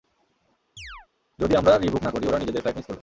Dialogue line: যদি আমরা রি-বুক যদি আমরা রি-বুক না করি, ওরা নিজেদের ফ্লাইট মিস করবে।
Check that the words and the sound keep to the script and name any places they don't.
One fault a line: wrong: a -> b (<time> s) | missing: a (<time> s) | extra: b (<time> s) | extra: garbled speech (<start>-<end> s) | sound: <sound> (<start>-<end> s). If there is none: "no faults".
sound: chirp (0.8-1.1 s)
missing: যদি আমরা রি-বুক (2.0 s)